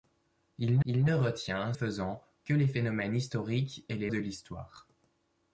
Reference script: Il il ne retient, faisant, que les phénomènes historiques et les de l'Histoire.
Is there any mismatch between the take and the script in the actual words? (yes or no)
no